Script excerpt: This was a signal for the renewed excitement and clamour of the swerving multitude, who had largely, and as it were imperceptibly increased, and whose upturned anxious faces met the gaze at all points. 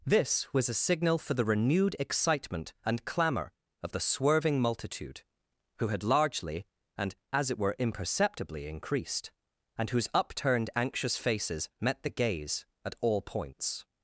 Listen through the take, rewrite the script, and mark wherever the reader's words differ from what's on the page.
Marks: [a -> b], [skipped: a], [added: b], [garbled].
This was a signal for the renewed excitement and clamour of the swerving multitude, who had largely, and as it were imperceptibly increased, and whose upturned anxious faces met the gaze at all points.